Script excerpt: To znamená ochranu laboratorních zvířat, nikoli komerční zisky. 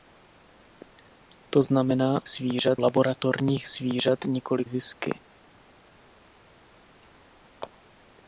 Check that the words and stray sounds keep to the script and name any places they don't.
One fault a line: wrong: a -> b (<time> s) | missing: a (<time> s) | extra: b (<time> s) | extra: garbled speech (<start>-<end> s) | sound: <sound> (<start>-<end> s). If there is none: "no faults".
wrong: ochranu -> zvířat (2.3 s)
missing: komerční (4.6 s)